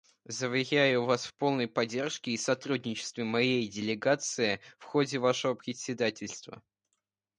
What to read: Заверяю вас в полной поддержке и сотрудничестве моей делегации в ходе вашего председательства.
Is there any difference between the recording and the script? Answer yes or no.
no